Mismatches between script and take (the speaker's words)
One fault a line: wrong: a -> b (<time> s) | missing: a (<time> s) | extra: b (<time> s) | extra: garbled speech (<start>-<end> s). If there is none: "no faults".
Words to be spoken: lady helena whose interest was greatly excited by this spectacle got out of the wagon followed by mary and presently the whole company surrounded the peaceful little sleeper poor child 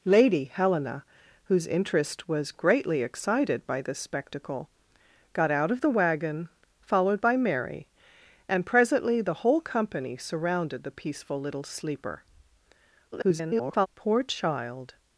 extra: garbled speech (13.1-13.9 s)